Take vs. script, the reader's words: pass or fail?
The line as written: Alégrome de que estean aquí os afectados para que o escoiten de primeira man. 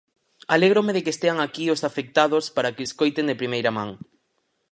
pass